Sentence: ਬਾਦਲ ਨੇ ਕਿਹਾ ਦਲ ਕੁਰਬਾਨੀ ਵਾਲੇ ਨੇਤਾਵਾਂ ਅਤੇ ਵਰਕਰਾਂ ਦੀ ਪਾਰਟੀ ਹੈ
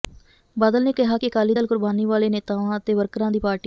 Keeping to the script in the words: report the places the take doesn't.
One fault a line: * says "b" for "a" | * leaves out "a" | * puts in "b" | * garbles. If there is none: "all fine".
* puts in "ਕਿ ਅਕਾਲੀ"